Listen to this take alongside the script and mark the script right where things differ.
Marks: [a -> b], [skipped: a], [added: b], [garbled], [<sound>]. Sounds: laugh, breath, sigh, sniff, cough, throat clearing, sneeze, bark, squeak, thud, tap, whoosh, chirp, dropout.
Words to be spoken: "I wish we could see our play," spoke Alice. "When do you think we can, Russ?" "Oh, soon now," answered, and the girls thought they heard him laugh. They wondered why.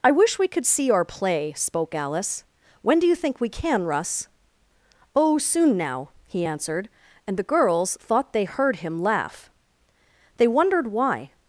"I wish we could see our play," spoke Alice. "When do you think we can, Russ?" "Oh, soon now," [added: he] answered, and the girls thought they heard him laugh. They wondered why.